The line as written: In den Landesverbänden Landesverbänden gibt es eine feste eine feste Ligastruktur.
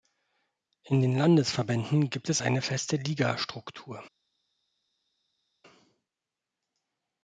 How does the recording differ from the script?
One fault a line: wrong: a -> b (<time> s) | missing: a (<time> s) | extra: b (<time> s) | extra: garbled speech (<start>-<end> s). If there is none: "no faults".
missing: Landesverbänden (2.1 s)
missing: eine feste (2.9 s)